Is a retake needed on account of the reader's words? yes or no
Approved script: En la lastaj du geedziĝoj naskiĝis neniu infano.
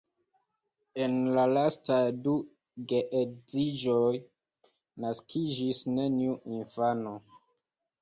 no